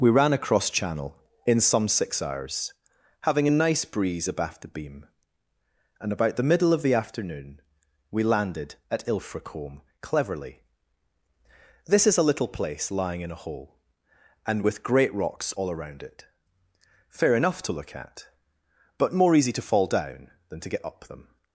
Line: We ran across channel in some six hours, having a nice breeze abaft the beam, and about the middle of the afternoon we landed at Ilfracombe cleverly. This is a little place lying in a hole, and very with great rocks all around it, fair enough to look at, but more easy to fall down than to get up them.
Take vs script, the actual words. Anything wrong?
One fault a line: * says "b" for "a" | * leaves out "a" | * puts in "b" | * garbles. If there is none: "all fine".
* leaves out "very"